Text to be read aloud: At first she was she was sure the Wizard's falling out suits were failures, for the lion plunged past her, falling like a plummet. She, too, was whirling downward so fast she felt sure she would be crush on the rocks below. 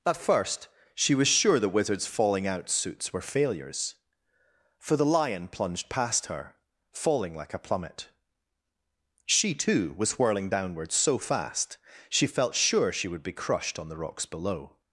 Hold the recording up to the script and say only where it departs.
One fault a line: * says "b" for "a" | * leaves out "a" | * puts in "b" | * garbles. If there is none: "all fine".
* leaves out "she was"
* says "crushed" for "crush"